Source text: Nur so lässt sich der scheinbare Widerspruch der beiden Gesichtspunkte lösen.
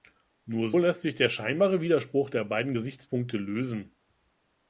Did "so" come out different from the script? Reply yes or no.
yes